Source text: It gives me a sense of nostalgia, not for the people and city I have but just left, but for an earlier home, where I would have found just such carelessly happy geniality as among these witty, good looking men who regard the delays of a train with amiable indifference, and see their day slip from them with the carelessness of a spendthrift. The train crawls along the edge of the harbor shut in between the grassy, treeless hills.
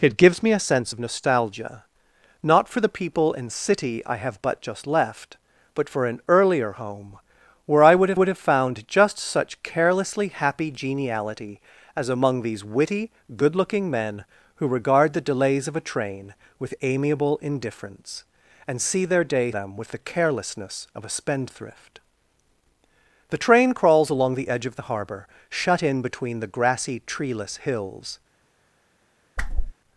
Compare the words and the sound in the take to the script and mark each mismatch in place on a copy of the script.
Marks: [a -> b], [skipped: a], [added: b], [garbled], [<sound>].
It gives me a sense of nostalgia, not for the people and city I have but just left, but for an earlier home, where I would have [added: would have] found just such carelessly happy geniality as among these witty, good looking men who regard the delays of a train with amiable indifference, and see their day [skipped: slip from] them with the carelessness of a spendthrift. The train crawls along the edge of the harbor shut in between the grassy, treeless hills. [whoosh]